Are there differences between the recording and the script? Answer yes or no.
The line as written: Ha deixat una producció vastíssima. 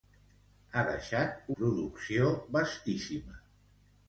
yes